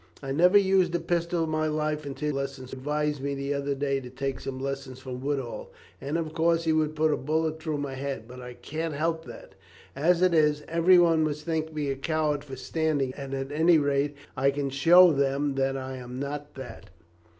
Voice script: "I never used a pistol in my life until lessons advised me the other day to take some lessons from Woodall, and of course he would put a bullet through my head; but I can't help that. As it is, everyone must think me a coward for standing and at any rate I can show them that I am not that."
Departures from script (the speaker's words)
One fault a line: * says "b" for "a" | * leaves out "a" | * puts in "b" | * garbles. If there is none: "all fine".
all fine